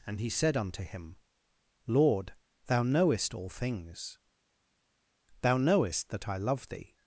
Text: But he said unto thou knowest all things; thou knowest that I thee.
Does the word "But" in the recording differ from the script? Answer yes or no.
yes